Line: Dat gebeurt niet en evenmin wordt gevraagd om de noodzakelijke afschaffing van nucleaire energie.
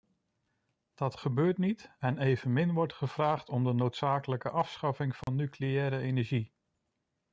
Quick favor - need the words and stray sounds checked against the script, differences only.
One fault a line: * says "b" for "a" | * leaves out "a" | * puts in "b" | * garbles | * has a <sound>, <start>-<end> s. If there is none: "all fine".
* has a dropout, 5.2-5.3 s